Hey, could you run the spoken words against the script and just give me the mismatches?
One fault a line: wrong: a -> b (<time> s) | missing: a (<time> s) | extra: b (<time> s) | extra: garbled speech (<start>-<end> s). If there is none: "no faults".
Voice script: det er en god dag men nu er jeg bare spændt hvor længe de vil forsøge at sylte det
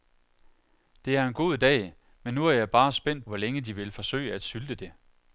no faults